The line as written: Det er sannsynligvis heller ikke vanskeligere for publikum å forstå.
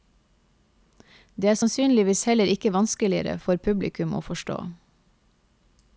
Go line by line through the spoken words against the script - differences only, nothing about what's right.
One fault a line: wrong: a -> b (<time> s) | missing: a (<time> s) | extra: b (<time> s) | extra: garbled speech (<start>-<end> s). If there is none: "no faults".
no faults